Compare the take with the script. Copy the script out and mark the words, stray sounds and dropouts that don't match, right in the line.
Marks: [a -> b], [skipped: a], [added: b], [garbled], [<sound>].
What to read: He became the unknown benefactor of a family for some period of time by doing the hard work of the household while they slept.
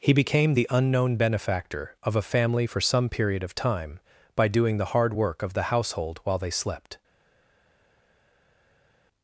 He became the unknown benefactor of a family for some period of time by doing the hard work of the household while they slept.